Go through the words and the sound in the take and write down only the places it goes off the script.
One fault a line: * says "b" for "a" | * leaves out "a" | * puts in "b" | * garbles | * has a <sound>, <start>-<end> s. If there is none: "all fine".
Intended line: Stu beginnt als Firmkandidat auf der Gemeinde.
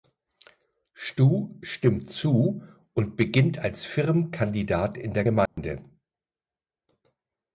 * puts in "stimmt zu und"
* says "in" for "auf"
* has a dropout, 5.5-5.6 s